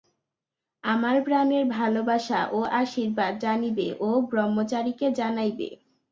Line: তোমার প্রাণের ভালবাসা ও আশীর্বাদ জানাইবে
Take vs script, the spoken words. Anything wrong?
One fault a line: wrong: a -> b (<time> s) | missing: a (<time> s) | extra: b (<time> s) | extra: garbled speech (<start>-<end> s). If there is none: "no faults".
wrong: তোমার -> আমার (0.8 s)
extra: জানিবে ও ব্রহ্মচারীকে (3.4 s)